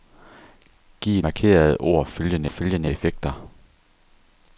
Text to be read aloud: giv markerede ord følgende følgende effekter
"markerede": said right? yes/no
yes